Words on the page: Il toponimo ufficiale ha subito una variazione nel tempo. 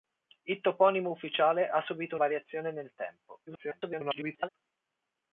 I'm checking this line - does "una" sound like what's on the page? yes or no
no